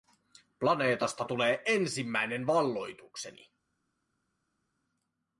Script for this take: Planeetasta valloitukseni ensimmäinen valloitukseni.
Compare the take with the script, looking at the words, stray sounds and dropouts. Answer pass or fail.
fail